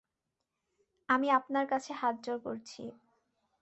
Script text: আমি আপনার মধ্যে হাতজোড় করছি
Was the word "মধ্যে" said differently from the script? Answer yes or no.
yes